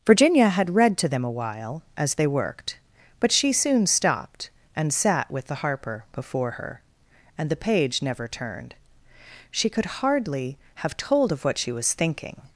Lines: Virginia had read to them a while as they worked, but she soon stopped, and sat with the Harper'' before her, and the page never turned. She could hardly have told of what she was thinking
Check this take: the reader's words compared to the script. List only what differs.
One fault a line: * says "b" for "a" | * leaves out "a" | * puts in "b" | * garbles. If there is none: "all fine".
all fine